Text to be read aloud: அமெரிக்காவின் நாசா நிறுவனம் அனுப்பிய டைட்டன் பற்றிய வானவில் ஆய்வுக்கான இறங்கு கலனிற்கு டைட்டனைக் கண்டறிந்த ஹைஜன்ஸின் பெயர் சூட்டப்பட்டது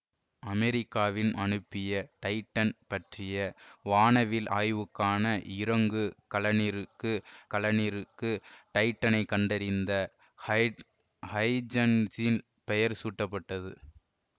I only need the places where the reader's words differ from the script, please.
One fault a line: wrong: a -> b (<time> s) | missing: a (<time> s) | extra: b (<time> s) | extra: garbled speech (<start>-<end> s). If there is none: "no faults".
missing: நாசா நிறுவனம் (1.3 s)
extra: கலனிற்கு (7.5 s)